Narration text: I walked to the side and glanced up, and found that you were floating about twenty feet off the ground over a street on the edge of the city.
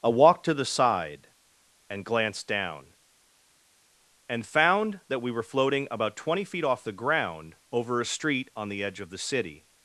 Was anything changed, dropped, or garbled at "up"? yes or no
yes